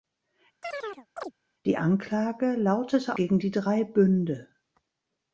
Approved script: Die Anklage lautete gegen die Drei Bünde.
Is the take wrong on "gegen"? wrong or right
right